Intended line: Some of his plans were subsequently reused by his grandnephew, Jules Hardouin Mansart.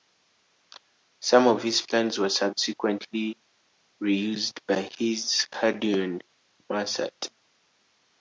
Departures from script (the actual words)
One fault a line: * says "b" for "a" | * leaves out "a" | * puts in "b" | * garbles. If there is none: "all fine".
* leaves out "grandnephew Jules"